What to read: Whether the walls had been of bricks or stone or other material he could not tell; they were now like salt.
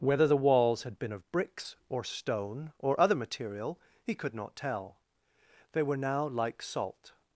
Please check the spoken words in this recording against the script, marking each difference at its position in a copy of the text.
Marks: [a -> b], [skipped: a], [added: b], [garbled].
Whether the walls had been of bricks or stone or other material he could not tell; they were now like salt.